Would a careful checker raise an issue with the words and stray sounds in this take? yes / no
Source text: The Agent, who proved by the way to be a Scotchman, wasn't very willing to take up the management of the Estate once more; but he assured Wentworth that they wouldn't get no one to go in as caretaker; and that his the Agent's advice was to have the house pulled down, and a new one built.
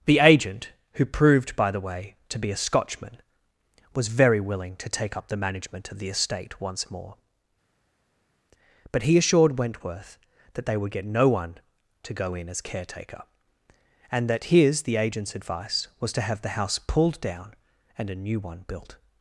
yes